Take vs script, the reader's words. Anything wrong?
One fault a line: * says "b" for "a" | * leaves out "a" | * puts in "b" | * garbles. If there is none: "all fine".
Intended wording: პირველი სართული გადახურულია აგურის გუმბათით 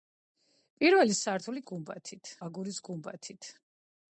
* says "გუმბათით" for "გადახურულია"